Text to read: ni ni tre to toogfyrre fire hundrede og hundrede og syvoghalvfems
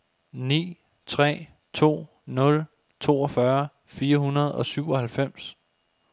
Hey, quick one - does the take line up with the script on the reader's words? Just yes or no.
no